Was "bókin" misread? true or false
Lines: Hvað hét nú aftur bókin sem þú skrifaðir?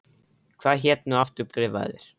true